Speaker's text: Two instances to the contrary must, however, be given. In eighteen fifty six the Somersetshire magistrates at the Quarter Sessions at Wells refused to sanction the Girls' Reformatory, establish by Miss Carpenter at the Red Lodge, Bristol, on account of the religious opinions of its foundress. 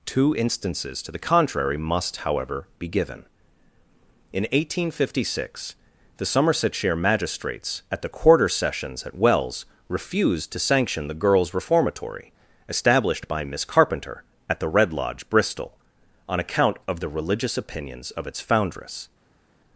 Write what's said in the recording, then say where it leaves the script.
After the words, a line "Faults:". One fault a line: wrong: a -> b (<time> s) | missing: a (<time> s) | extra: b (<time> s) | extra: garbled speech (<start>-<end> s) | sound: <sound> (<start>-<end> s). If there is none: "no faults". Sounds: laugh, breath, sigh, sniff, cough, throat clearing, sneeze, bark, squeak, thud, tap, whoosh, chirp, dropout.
Two instances to the contrary must, however, be given. In eighteen fifty six the Somersetshire magistrates at the Quarter Sessions at Wells refused to sanction the Girls' Reformatory, established by Miss Carpenter at the Red Lodge, Bristol, on account of the religious opinions of its foundress.
Faults:
wrong: establish -> established (12.7 s)